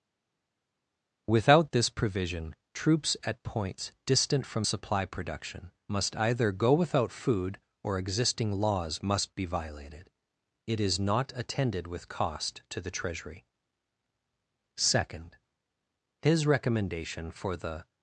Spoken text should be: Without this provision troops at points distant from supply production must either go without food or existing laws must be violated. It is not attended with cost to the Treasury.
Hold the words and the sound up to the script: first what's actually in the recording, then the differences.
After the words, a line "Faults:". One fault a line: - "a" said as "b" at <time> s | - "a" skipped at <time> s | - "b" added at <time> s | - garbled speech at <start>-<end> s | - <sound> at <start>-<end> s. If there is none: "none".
Without this provision troops at points distant from supply production must either go without food or existing laws must be violated. It is not attended with cost to the Treasury. Second. His recommendation for the
Faults:
- "Second His recommendation for the" added at 14.8 s